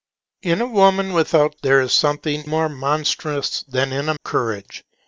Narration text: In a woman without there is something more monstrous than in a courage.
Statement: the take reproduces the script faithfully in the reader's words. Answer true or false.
true